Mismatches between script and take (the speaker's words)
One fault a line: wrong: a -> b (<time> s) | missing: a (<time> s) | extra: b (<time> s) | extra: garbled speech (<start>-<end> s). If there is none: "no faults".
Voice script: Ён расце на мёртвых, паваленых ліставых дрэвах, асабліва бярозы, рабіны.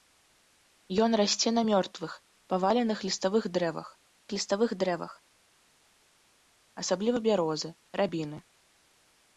extra: ліставых дрэвах (4.3 s)